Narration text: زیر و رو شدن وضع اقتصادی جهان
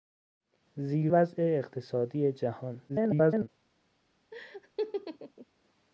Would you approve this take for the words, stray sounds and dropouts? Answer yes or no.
no